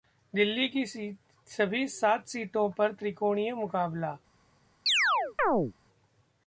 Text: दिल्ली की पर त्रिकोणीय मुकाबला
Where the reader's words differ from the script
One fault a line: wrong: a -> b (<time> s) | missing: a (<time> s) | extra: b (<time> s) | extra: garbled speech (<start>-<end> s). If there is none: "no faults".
extra: सभी सात सीटों (1.5 s)